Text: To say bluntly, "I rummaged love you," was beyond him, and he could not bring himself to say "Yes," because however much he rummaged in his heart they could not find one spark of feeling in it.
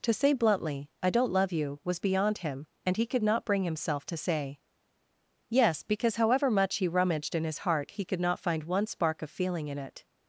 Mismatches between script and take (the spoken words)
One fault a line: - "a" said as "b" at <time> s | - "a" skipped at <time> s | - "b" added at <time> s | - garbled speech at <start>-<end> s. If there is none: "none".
- "rummaged" said as "don't" at 1.1 s
- "they" said as "he" at 7.9 s